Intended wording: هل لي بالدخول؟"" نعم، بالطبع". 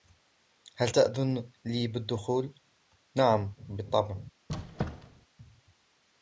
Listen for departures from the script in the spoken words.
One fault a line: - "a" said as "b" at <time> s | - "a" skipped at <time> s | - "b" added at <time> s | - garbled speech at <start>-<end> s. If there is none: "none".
- "تأذن" added at 0.9 s